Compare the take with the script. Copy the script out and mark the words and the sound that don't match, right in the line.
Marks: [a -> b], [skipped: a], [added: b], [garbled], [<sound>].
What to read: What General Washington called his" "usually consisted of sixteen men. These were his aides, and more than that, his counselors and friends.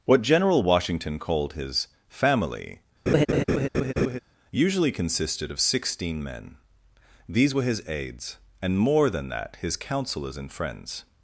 What General Washington called his" [added: family] [laugh] "usually consisted of sixteen men. These were his aides, and more than that, his counselors and friends.